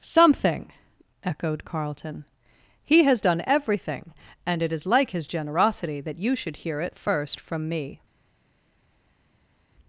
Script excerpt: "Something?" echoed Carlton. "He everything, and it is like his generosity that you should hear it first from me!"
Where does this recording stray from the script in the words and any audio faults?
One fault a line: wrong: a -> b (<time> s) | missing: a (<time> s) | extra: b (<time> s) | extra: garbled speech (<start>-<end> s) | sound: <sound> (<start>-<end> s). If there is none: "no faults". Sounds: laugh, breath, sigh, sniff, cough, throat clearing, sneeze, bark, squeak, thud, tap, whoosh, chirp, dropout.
extra: has done (3.0 s)